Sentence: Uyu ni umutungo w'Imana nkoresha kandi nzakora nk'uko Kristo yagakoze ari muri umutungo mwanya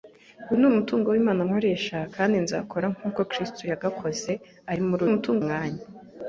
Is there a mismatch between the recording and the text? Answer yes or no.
no